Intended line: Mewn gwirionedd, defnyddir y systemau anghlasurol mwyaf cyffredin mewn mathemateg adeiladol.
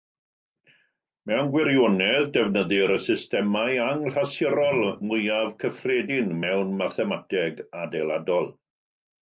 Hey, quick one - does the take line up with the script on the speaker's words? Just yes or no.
yes